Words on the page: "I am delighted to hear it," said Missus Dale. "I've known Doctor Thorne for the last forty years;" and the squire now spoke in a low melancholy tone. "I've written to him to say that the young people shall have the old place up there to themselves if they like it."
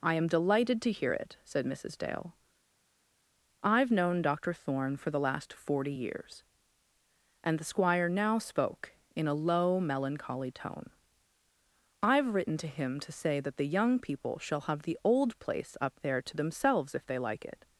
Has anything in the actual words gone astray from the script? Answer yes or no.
no